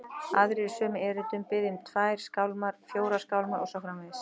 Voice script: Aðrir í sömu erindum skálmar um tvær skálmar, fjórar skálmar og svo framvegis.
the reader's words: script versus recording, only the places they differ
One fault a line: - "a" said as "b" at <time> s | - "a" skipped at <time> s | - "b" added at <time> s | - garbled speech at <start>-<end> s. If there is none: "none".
- "skálmar" said as "biðja" at 1.5 s